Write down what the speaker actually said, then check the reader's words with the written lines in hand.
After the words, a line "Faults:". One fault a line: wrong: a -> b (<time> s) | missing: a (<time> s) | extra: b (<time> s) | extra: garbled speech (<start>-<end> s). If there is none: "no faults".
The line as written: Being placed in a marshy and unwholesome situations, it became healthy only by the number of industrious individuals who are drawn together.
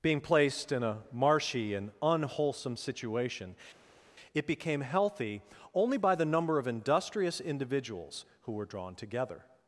Being placed in a marshy and unwholesome situation, it became healthy only by the number of industrious individuals who were drawn together.
Faults:
wrong: situations -> situation (2.8 s)
wrong: are -> were (8.5 s)